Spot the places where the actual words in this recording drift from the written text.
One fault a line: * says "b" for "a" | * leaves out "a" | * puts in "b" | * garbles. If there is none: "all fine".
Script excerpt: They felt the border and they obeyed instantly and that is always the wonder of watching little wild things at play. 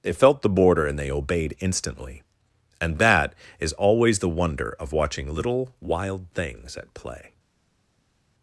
all fine